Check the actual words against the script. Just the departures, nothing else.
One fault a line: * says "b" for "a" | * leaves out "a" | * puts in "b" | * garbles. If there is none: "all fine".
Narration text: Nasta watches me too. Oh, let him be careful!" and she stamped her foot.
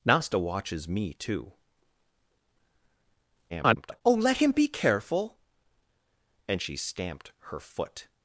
* garbles